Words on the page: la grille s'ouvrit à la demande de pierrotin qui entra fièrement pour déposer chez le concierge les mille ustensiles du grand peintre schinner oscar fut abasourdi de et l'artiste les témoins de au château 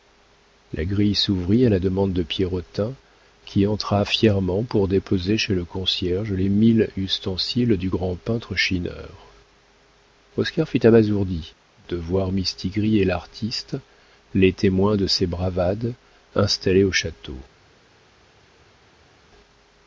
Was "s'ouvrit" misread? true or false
false